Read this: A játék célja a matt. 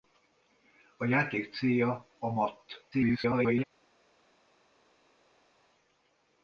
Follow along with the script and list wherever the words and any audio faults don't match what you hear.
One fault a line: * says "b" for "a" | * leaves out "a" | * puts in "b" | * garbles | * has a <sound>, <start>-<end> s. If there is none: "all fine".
* garbles